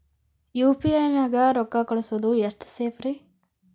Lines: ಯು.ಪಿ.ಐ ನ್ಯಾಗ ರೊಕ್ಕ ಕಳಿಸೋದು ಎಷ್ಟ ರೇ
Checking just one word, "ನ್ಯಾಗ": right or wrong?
right